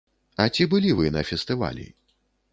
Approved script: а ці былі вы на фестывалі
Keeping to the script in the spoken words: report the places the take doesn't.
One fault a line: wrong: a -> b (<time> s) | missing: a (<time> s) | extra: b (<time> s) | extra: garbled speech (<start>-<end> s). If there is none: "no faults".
no faults